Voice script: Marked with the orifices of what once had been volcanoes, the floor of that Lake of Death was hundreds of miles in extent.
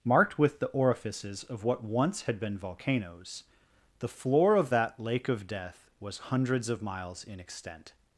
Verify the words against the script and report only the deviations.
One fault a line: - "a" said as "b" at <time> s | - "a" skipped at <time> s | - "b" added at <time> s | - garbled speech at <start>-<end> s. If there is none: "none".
none